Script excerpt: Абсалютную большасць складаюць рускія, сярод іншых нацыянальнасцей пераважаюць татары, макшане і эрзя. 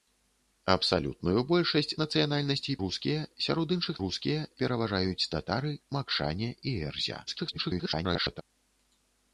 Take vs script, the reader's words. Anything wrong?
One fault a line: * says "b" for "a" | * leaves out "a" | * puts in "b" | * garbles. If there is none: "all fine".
* says "нацыянальнасцей" for "складаюць"
* says "рускія" for "нацыянальнасцей"
* garbles